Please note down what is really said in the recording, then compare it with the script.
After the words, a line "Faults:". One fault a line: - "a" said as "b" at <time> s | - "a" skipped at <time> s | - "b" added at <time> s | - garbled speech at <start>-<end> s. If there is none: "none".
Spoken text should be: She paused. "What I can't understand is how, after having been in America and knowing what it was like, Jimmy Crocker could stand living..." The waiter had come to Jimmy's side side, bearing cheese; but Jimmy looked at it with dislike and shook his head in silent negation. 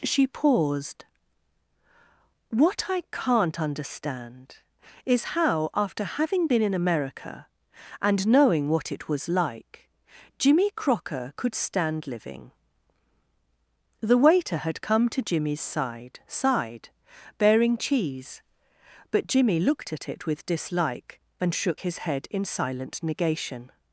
She paused. "What I can't understand is how, after having been in America and knowing what it was like, Jimmy Crocker could stand living..." The waiter had come to Jimmy's side side, bearing cheese; but Jimmy looked at it with dislike and shook his head in silent negation.
Faults:
none